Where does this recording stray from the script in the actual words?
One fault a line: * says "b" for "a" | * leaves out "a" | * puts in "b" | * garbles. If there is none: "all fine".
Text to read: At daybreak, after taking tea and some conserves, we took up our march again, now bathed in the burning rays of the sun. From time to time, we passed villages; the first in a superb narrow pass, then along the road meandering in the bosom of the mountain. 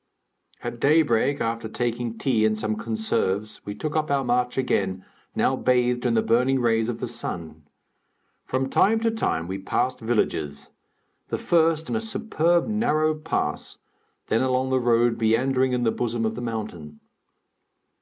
all fine